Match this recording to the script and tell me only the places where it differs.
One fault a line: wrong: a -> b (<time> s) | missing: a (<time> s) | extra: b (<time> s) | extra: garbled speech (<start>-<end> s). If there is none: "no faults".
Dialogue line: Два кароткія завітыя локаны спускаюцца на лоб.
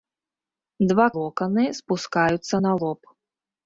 missing: кароткія завітыя (1.0 s)